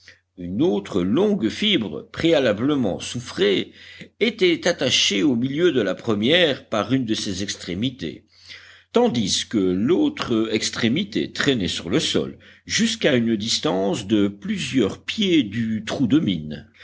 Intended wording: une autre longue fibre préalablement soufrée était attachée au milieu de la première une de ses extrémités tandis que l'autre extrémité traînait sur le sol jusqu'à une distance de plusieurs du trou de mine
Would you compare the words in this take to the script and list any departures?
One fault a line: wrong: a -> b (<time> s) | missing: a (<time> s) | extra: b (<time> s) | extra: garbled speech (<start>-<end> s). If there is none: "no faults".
extra: par (6.7 s)
extra: pieds (15.0 s)